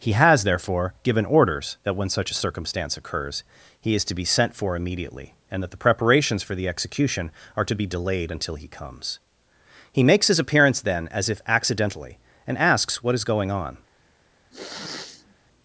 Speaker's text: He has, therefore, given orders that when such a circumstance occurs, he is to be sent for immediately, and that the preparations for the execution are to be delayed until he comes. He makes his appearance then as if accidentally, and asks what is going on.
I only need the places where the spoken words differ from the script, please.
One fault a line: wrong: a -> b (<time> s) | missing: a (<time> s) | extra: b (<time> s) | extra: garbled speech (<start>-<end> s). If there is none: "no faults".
no faults